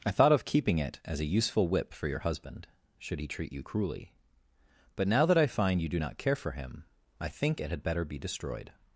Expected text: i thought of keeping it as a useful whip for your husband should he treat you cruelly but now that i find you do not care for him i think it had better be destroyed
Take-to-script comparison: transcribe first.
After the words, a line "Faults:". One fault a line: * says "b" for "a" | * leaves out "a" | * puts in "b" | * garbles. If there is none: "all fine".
i thought of keeping it as a useful whip for your husband should he treat you cruelly but now that i find you do not care for him i think it had better be destroyed
Faults:
all fine